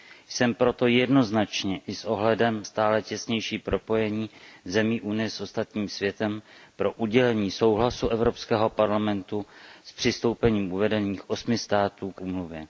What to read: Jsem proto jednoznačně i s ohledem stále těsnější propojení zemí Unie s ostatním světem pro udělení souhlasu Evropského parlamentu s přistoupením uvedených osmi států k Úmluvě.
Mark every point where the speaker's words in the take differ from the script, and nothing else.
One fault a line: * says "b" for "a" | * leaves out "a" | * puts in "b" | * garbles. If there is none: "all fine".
all fine